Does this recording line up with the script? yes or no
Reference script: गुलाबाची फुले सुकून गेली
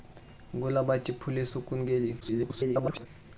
no